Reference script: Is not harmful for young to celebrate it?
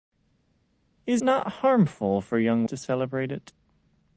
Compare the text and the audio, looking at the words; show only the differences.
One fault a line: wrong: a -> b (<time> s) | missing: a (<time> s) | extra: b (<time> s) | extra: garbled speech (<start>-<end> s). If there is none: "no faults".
no faults